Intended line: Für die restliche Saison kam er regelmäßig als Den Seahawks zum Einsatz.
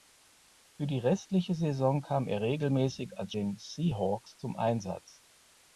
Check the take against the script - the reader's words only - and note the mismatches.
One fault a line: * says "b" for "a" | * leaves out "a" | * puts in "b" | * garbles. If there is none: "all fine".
all fine